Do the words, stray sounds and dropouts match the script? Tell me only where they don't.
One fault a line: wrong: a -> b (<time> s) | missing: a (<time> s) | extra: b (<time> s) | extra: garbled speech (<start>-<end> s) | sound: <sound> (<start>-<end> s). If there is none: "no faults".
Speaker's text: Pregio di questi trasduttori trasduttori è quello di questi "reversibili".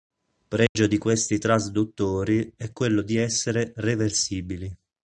sound: dropout (0.7-0.8 s)
missing: trasduttori (2.5 s)
wrong: questi -> essere (3.2 s)